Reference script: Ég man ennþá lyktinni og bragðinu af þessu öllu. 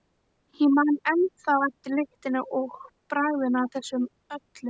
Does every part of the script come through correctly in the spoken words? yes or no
no